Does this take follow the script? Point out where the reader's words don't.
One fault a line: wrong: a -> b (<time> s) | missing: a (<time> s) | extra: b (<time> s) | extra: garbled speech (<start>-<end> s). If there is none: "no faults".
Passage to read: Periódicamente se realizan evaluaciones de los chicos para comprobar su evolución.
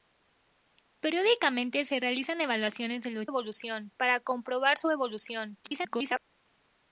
wrong: chicos -> evolución (3.2 s)
extra: garbled speech (5.6-6.2 s)